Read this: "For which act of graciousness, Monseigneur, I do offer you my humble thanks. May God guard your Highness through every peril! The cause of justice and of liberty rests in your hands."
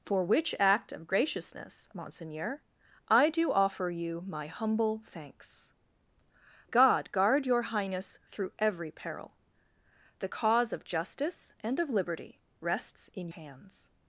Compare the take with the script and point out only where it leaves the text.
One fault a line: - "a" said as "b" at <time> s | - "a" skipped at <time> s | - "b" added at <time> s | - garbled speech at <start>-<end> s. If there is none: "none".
- "May" skipped at 5.7 s
- "your" skipped at 13.3 s